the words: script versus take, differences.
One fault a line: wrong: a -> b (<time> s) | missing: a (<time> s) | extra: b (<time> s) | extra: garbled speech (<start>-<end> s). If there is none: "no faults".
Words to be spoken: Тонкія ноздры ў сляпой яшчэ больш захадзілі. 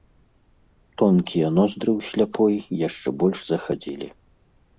no faults